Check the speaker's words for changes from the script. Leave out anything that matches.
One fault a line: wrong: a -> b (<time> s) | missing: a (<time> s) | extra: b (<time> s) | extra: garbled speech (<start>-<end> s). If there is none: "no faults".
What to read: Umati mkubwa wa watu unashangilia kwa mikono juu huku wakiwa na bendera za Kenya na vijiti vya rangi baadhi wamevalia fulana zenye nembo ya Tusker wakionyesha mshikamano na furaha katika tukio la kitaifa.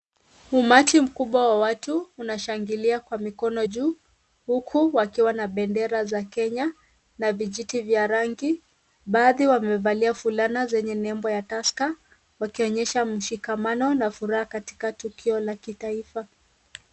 no faults